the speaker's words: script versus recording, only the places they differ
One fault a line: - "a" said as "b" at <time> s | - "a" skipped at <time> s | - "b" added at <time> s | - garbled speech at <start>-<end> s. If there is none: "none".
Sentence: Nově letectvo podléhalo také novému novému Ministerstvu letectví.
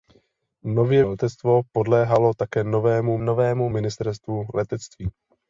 none